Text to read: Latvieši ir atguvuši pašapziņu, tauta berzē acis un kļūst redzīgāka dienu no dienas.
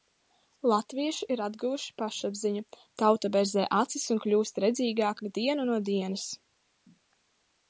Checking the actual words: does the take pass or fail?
pass